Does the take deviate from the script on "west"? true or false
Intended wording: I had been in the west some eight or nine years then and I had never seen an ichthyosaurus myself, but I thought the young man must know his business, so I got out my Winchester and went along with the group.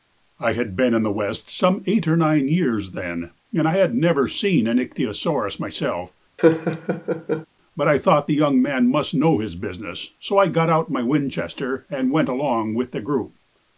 false